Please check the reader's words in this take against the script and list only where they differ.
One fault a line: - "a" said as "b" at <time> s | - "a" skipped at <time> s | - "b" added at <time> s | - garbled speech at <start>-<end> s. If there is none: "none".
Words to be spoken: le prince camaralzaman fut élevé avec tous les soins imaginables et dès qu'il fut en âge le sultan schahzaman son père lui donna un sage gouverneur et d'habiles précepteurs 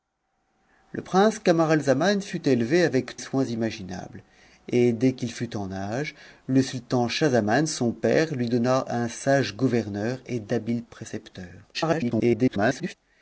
- "tous les" skipped at 3.2 s
- garbled speech at 11.7-12.9 s